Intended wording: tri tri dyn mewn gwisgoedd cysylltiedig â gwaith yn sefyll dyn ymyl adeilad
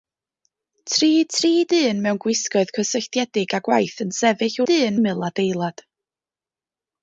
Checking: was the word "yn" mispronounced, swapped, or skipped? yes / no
no